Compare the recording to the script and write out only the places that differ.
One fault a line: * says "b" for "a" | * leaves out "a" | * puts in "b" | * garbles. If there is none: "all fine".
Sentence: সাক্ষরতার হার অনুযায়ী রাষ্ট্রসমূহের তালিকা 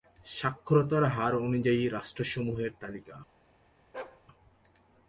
all fine